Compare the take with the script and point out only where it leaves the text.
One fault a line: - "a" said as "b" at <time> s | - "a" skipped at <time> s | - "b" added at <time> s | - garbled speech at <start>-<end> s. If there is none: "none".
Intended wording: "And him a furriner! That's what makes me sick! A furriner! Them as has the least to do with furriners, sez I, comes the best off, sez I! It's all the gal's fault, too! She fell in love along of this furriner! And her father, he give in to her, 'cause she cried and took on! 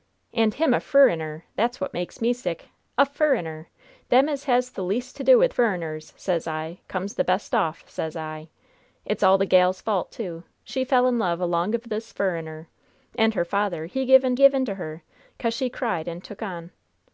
- "give in" added at 14.4 s